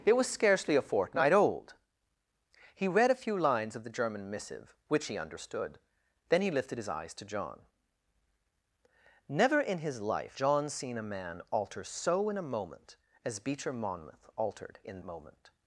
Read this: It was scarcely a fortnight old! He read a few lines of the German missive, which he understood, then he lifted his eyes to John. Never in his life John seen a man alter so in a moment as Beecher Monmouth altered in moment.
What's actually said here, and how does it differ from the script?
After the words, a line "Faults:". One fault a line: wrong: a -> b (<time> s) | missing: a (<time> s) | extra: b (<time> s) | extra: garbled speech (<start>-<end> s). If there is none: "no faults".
It was scarcely a fortnight old! He read a few lines of the German missive, which he understood, then he lifted his eyes to John. Never in his life John seen a man alter so in a moment as Beecher Monmouth altered in moment.
Faults:
no faults